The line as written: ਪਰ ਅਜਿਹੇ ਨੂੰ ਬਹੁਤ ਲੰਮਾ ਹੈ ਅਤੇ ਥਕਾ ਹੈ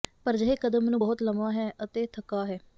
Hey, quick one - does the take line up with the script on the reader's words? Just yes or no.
no